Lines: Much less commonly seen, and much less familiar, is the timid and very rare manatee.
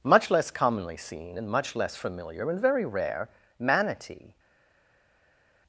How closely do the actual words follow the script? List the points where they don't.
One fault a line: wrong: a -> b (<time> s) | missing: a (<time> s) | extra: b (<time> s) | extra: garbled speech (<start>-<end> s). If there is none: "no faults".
missing: is the timid (2.5 s)